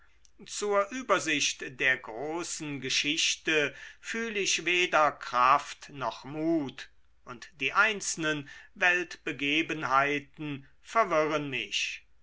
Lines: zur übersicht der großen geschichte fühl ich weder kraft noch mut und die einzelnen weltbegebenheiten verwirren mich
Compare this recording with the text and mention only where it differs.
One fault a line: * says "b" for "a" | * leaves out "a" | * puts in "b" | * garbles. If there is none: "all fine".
all fine